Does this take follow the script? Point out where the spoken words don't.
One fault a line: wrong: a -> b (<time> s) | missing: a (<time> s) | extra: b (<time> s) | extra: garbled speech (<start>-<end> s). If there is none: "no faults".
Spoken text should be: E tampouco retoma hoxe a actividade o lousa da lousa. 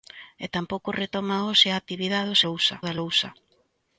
no faults